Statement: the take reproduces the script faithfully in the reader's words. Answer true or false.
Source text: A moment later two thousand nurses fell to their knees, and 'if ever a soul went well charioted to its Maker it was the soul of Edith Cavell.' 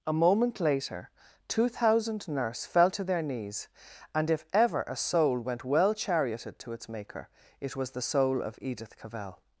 false